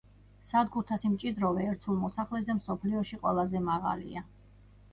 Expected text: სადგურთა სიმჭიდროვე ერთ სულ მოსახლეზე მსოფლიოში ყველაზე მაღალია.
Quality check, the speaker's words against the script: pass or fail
pass